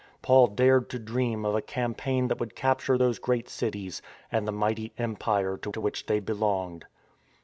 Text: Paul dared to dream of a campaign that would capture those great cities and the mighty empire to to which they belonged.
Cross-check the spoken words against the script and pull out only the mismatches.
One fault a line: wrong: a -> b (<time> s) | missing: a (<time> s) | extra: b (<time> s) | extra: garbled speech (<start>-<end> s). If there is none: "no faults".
no faults